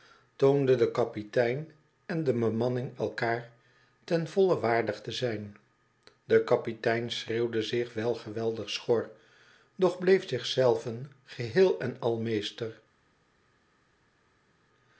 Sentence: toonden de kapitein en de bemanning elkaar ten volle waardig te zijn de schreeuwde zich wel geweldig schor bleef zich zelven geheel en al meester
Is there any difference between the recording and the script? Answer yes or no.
yes